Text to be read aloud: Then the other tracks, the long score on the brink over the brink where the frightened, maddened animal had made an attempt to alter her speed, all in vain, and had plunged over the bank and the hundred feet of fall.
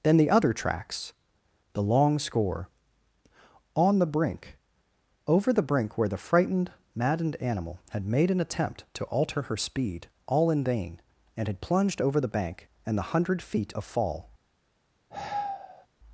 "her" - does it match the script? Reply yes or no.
yes